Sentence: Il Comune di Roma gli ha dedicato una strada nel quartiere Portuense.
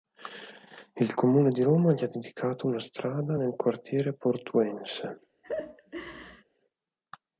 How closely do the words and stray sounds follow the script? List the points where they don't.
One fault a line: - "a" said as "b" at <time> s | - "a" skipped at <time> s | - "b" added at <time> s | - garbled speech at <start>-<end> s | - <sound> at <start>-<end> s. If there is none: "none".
- laugh at 5.4-6.4 s